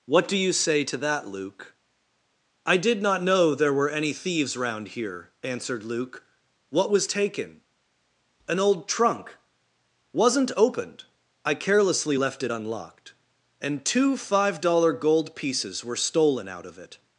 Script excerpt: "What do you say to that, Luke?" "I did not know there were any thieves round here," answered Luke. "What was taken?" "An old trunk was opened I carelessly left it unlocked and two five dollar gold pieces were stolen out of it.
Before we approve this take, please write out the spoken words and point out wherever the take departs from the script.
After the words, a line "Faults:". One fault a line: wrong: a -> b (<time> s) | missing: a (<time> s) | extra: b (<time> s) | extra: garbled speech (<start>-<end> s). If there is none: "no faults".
"What do you say to that, Luke?" "I did not know there were any thieves round here," answered Luke. "What was taken?" "An old trunk wasn't opened I carelessly left it unlocked and two five dollar gold pieces were stolen out of it.
Faults:
wrong: was -> wasn't (10.1 s)